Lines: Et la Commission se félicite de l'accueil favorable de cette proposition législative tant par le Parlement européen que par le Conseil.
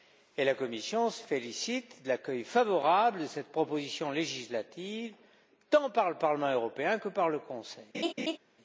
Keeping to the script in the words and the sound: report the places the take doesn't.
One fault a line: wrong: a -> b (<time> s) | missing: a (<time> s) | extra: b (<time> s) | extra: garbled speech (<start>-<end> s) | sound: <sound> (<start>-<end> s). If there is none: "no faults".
sound: laugh (7.9-8.4 s)